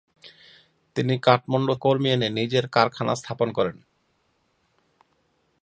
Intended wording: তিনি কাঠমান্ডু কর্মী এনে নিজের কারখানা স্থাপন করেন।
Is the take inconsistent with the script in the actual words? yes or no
no